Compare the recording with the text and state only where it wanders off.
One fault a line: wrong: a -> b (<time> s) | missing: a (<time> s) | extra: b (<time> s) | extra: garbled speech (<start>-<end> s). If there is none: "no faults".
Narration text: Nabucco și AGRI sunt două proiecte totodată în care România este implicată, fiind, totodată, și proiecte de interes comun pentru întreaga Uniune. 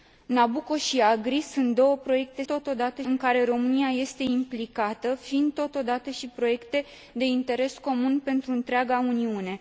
no faults